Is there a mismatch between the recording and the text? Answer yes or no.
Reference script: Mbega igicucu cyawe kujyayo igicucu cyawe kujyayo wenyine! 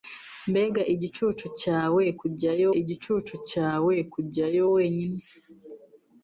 no